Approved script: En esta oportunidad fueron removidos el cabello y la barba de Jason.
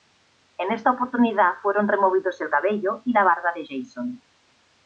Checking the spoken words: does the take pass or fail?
pass